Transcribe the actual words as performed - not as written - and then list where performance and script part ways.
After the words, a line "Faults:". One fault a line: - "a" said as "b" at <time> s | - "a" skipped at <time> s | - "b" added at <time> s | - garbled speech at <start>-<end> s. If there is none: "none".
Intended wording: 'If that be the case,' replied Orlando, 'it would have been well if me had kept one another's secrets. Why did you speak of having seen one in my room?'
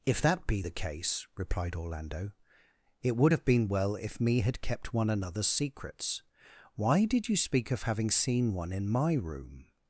'If that be the case,' replied Orlando, 'it would have been well if me had kept one another's secrets. Why did you speak of having seen one in my room?'
Faults:
none